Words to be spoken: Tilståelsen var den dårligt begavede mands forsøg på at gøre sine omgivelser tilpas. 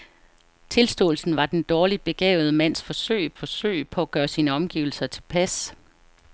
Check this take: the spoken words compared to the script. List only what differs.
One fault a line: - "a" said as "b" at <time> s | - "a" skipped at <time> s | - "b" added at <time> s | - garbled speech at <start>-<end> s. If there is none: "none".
- "forsøg" added at 3.4 s